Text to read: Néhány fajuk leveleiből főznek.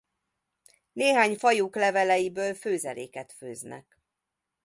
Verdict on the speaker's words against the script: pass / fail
fail